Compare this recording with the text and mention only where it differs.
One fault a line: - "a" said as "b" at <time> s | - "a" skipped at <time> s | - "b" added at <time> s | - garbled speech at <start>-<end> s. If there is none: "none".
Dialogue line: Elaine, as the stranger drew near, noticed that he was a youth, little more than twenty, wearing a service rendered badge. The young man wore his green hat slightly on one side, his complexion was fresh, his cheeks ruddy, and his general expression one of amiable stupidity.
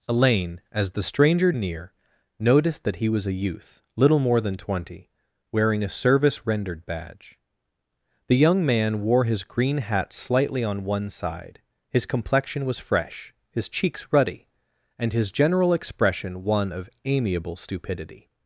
- "drew" skipped at 1.5 s